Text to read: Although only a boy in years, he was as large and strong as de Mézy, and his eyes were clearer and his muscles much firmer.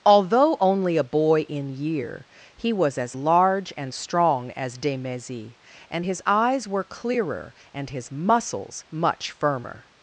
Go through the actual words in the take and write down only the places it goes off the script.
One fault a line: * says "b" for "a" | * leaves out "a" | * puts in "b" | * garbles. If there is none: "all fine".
* says "year" for "years"